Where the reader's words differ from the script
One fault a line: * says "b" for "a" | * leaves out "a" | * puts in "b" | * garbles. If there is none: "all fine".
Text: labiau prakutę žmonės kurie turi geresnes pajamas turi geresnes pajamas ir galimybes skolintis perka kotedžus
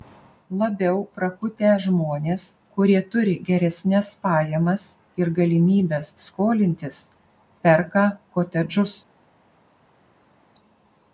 * leaves out "turi geresnes pajamas"